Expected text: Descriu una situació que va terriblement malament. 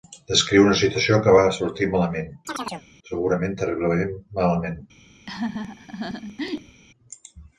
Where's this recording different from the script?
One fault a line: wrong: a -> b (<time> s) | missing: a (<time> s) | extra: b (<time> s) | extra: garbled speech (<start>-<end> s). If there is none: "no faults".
extra: sortir malament segurament (1.6 s)